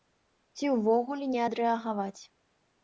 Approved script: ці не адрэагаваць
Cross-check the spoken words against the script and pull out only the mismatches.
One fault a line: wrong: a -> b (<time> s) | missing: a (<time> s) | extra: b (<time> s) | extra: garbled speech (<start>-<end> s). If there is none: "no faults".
extra: ўвогуле (0.8 s)